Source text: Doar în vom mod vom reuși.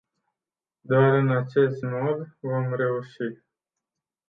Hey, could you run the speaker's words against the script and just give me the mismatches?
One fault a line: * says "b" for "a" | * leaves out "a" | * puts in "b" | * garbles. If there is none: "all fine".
* says "acest" for "vom"